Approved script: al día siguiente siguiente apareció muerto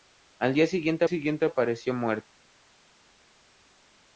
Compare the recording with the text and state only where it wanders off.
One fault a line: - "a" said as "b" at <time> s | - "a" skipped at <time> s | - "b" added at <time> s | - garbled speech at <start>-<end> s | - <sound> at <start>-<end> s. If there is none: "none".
none